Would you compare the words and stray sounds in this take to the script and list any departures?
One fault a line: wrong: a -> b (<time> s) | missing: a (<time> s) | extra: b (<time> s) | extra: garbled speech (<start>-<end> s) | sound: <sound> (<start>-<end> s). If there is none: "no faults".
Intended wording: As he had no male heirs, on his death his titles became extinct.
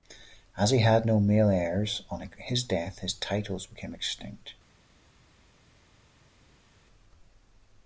no faults